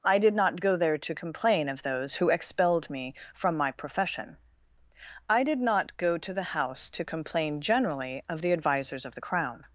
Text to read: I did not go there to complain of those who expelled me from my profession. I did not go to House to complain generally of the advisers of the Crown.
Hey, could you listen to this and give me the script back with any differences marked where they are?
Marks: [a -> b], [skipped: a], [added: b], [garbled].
I did not go there to complain of those who expelled me from my profession. I did not go to [added: the] House to complain generally of the advisers of the Crown.